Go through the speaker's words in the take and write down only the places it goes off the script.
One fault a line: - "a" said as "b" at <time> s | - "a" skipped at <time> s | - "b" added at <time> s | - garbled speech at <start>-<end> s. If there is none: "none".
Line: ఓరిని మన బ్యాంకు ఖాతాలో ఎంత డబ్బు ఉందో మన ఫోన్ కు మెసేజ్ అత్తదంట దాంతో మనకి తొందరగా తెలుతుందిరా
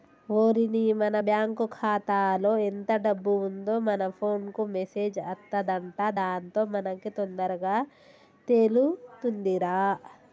none